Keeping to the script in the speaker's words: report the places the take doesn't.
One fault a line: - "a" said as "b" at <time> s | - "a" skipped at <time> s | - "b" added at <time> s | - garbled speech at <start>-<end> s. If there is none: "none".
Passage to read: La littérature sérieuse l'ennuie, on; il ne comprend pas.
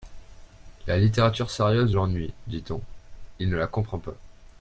- "dit" added at 2.5 s
- "la" added at 3.6 s